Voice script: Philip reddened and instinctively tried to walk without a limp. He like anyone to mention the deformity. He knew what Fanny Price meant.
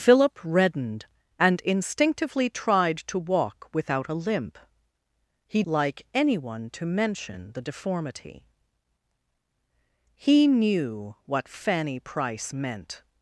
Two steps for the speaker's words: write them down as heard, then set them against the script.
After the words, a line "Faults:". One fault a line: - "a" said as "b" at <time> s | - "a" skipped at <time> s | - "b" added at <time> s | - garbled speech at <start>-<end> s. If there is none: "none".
Philip reddened and instinctively tried to walk without a limp. He like anyone to mention the deformity. He knew what Fanny Price meant.
Faults:
none